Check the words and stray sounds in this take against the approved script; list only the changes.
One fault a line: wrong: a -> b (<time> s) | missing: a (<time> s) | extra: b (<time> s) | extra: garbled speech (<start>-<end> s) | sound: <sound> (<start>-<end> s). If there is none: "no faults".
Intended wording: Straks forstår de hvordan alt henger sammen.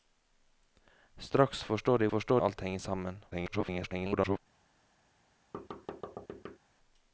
wrong: hvordan -> forstår (2.1 s)
extra: garbled speech (3.3-4.4 s)
sound: thud (5.5-6.6 s)